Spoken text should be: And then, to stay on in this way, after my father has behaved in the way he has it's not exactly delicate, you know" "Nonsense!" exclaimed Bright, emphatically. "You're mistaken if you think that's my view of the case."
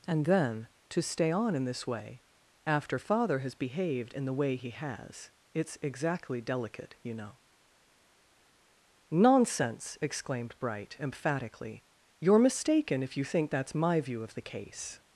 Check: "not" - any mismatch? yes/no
yes